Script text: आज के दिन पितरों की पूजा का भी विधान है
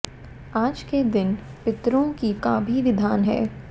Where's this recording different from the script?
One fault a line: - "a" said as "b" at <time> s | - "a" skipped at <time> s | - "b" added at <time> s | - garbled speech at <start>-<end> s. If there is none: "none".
- "पूजा" skipped at 2.3 s